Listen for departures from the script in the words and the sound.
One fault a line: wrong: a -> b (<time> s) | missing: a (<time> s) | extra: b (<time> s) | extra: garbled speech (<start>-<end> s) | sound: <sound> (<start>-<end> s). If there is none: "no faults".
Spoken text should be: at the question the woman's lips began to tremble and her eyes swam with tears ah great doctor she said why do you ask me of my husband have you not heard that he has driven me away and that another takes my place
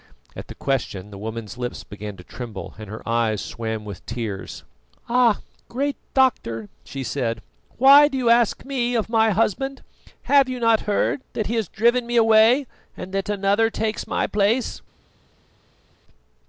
no faults